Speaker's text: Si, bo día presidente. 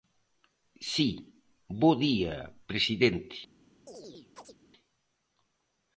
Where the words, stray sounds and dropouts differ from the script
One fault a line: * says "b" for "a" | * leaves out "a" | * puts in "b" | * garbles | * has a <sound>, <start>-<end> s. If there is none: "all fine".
* has a chirp, 3.9-4.6 s